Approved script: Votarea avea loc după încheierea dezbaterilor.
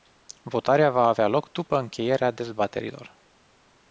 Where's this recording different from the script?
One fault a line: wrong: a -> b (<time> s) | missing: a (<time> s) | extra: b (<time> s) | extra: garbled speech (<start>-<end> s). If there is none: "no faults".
extra: va (0.9 s)